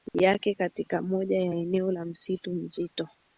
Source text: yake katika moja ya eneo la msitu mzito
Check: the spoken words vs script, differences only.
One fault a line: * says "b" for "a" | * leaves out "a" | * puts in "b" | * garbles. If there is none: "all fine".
all fine